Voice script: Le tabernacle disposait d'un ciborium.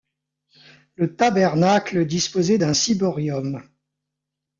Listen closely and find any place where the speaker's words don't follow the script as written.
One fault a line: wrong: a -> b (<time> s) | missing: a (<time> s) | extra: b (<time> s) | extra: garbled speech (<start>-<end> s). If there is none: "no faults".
no faults